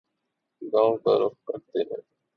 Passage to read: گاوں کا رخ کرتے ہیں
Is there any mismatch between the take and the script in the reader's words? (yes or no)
no